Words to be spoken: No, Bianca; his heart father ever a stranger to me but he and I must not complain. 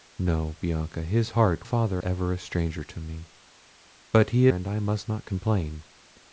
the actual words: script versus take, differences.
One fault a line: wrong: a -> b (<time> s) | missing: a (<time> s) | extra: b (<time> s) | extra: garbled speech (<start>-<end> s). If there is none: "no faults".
no faults